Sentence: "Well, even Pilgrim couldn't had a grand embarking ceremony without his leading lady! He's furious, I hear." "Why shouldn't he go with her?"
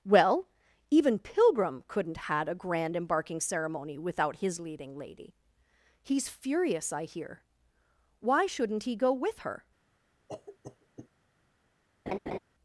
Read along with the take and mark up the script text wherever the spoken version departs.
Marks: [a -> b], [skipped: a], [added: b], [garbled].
"Well, even Pilgrim couldn't had a grand embarking ceremony without his leading lady! He's furious, I hear." "Why shouldn't he go with her?"